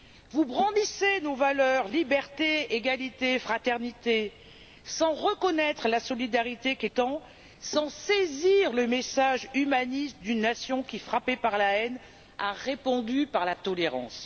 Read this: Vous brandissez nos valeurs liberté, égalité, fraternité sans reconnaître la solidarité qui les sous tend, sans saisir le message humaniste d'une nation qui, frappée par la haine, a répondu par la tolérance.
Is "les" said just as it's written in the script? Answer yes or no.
no